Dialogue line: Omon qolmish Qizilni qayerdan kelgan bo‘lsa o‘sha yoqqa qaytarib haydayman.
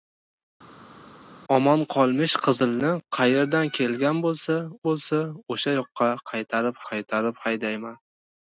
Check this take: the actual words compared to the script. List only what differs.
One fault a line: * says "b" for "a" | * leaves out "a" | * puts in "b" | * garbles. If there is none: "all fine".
* puts in "bo‘lsa"
* puts in "qaytarib"